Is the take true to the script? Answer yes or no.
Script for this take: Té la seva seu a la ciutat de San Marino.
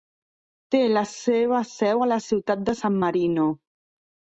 yes